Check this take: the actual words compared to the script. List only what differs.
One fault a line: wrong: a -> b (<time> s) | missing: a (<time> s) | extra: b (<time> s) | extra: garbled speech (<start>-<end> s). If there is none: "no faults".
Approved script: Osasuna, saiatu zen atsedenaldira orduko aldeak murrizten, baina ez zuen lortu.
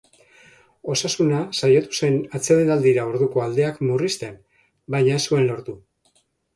no faults